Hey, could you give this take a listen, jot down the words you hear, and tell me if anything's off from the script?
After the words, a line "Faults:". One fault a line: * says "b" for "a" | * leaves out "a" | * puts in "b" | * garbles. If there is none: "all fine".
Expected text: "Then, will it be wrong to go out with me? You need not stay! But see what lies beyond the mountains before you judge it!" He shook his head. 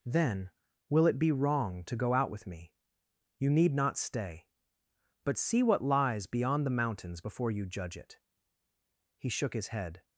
"Then, will it be wrong to go out with me? You need not stay! But see what lies beyond the mountains before you judge it!" He shook his head.
Faults:
all fine